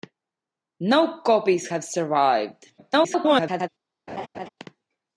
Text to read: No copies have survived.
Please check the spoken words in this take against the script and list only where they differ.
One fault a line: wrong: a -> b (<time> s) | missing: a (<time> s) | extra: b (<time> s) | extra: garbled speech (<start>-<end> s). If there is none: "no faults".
extra: garbled speech (2.8-3.7 s)